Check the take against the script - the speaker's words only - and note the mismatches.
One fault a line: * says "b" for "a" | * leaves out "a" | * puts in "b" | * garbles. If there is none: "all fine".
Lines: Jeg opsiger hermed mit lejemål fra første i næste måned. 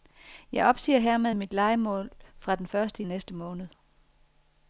* puts in "den"